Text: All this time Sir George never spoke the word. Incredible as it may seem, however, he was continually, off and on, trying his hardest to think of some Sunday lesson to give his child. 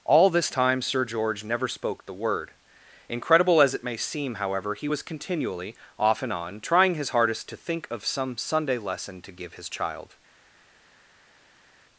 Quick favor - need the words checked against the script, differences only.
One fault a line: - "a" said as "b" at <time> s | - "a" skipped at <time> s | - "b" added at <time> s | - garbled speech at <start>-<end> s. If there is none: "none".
none